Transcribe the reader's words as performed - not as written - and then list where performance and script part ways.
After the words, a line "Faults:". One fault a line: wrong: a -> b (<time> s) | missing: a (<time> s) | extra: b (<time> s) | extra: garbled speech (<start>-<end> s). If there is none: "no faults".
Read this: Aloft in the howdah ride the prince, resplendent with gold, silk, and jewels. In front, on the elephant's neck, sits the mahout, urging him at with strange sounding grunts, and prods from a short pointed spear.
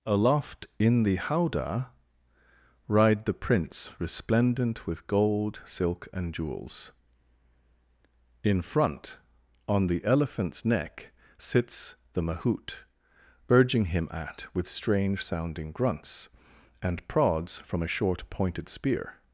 Aloft in the howdah ride the prince, resplendent with gold, silk, and jewels. In front, on the elephant's neck, sits the mahout, urging him at with strange sounding grunts, and prods from a short pointed spear.
Faults:
no faults